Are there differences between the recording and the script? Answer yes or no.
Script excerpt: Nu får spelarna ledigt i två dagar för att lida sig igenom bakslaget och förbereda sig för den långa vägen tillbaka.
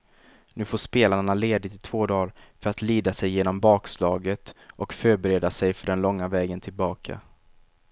no